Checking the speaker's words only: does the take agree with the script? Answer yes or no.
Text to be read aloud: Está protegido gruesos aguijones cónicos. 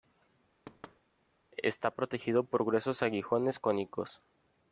no